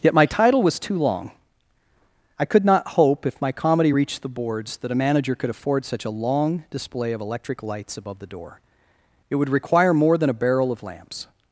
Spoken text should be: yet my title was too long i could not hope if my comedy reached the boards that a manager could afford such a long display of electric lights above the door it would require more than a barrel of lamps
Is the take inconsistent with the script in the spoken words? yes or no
no